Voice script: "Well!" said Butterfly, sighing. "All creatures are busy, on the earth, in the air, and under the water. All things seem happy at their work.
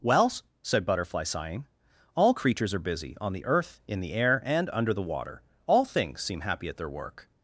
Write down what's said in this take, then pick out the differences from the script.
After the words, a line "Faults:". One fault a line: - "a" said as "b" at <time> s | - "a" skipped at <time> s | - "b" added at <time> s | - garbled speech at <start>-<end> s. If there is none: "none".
"Well!" said Butterfly, sighing. "All creatures are busy, on the earth, in the air, and under the water. All things seem happy at their work.
Faults:
none